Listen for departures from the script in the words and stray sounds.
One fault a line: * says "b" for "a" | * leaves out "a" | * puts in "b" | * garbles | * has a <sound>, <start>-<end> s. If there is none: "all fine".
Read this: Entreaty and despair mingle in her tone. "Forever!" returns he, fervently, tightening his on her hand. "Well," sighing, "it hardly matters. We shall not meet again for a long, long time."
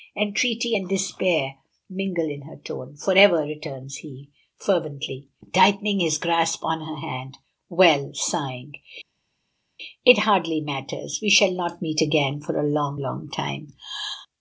* puts in "grasp"